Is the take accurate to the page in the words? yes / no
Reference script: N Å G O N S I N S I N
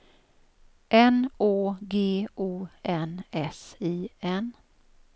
no